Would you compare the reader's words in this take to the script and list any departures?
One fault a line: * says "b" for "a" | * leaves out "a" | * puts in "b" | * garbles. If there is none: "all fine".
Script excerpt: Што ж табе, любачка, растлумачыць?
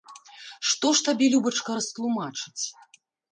all fine